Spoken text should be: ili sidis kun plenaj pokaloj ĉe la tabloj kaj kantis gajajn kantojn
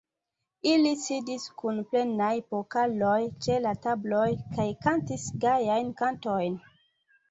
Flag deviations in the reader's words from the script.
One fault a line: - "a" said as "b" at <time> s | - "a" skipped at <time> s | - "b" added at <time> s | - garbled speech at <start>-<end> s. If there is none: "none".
none